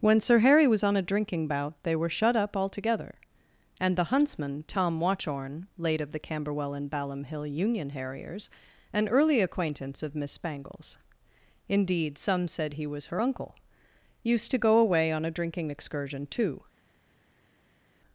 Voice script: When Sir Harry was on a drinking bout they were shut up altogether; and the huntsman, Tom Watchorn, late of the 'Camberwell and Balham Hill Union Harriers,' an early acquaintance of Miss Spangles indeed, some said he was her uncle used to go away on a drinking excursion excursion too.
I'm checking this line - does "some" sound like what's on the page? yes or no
yes